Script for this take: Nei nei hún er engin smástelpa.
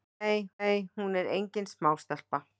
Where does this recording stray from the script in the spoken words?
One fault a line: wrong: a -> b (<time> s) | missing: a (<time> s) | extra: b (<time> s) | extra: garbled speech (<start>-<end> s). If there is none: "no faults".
no faults